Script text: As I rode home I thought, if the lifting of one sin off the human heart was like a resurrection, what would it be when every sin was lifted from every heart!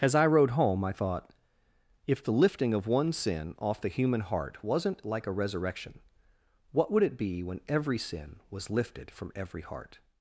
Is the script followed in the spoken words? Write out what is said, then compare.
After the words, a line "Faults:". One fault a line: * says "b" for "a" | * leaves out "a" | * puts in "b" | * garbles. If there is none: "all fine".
As I rode home I thought, if the lifting of one sin off the human heart wasn't like a resurrection, what would it be when every sin was lifted from every heart!
Faults:
* says "wasn't" for "was"